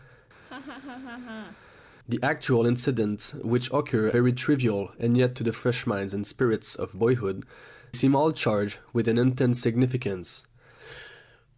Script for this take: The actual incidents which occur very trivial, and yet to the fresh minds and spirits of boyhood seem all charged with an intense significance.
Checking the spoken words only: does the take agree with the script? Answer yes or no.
yes